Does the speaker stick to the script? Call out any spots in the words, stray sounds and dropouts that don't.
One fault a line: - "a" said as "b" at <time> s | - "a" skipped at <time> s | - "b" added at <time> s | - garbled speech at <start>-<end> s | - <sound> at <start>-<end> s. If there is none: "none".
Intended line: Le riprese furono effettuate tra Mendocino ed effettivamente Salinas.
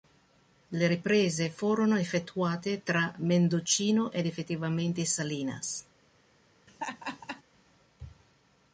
- laugh at 6.7-7.4 s